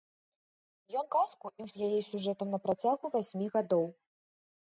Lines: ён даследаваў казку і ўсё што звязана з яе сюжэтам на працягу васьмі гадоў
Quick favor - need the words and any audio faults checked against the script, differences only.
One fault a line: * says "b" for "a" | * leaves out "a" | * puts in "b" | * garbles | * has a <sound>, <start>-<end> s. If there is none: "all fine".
* leaves out "даследаваў"
* leaves out "ўсё што звязана"